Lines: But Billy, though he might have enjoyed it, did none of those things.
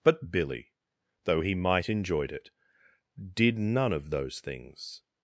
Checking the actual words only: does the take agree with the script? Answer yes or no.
no